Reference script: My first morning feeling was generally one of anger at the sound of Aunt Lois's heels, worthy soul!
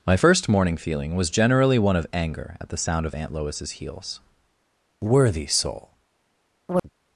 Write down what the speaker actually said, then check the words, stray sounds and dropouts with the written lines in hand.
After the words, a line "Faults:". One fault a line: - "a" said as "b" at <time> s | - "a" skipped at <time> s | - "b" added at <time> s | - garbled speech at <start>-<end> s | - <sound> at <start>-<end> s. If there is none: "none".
My first morning feeling was generally one of anger at the sound of Aunt Lois's heels, worthy soul!
Faults:
- chirp at 6.7-6.9 s